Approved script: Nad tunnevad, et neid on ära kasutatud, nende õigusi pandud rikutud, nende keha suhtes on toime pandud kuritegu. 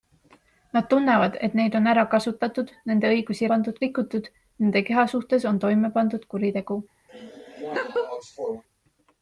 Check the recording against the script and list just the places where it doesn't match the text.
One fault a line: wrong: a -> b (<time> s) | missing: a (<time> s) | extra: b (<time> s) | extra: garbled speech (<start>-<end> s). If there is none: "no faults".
no faults